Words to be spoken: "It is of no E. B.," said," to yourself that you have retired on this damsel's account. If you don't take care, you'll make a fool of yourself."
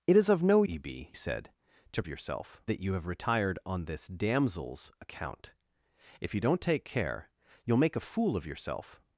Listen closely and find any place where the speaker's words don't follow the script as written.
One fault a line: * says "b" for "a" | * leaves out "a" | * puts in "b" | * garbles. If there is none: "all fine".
all fine